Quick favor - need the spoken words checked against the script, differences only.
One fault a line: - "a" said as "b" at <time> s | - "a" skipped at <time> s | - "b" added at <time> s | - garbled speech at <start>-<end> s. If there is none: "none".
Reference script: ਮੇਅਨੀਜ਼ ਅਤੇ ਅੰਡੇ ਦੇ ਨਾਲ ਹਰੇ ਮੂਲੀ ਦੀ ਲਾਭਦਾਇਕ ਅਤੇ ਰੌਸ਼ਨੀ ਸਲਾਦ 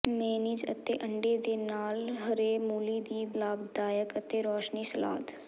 none